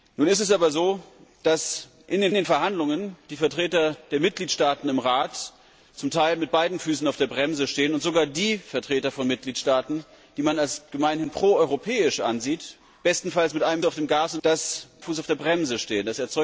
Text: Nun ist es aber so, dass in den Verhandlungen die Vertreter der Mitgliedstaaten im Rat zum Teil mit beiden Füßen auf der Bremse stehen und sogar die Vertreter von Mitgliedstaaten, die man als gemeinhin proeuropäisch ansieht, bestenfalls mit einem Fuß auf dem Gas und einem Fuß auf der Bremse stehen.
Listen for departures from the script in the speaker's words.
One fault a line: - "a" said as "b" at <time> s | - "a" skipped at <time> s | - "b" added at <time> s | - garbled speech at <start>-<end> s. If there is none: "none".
- "den" added at 2.3 s
- "Fuß" skipped at 13.8 s
- "einem" said as "dass" at 14.4 s